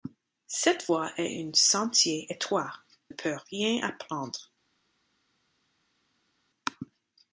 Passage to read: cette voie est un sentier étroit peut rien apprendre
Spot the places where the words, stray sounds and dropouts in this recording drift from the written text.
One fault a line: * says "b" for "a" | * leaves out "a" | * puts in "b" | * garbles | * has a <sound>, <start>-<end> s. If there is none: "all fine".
all fine